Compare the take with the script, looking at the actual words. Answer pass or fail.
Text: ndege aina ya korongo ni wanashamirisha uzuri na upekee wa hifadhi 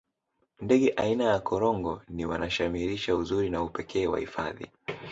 pass